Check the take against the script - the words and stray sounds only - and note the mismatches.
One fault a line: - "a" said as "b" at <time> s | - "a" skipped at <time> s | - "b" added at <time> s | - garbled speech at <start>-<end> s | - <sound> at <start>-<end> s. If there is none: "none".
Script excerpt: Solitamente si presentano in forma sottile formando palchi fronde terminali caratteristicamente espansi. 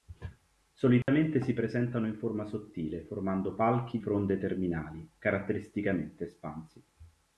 - dropout at 1.0-1.1 s